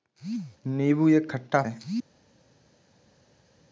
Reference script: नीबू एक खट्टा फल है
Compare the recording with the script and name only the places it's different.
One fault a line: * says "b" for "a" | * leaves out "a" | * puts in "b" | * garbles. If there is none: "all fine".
* leaves out "फल"